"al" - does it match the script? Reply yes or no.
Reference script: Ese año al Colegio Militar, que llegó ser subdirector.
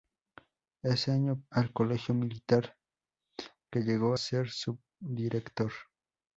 yes